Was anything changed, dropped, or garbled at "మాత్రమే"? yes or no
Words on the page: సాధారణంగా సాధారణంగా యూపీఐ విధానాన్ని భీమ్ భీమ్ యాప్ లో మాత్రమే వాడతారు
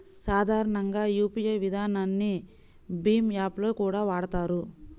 yes